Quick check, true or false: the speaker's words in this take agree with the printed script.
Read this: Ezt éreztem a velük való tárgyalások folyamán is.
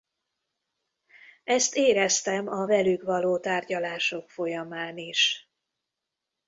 true